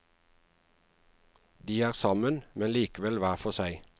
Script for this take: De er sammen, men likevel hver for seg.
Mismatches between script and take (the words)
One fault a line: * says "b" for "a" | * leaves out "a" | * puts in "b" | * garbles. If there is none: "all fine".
all fine